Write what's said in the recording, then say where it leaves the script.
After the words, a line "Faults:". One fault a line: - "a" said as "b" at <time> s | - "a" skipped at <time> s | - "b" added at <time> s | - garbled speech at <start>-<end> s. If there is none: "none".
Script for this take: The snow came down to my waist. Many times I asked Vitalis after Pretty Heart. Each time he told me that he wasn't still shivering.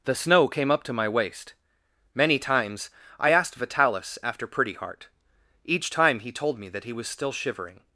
The snow came up to my waist. Many times I asked Vitalis after Pretty Heart. Each time he told me that he was still shivering.
Faults:
- "down" said as "up" at 0.7 s
- "wasn't" said as "was" at 6.9 s